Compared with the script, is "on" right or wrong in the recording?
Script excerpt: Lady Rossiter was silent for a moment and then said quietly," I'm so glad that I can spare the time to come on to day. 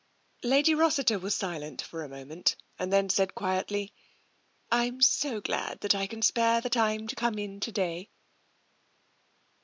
wrong